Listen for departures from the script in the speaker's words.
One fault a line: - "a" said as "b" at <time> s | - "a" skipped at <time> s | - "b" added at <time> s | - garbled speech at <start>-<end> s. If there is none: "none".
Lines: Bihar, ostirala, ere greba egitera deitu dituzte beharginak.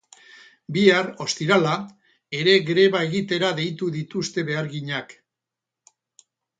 none